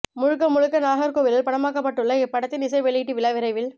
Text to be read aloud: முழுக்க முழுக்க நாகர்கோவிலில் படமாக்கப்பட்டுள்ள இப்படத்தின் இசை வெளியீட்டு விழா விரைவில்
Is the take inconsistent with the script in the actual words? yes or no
no